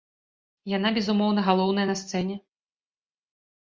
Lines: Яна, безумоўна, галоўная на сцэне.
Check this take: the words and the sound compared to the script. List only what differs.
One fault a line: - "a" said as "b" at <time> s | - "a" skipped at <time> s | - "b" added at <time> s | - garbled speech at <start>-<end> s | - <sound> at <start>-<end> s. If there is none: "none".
none